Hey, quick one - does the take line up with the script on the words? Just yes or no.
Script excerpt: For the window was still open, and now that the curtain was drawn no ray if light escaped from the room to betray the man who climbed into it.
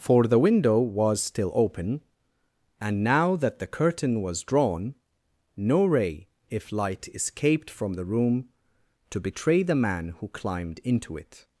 yes